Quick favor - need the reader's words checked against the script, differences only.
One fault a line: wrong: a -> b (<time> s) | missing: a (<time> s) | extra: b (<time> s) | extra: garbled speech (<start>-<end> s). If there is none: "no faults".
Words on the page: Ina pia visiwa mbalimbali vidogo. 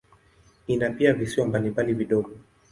no faults